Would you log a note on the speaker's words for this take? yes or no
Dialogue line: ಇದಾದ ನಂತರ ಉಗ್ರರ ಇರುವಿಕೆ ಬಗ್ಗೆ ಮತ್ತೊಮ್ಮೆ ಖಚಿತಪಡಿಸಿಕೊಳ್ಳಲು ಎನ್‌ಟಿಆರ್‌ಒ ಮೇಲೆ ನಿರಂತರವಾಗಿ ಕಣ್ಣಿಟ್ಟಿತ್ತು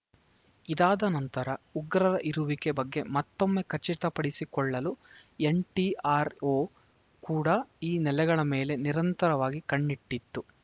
yes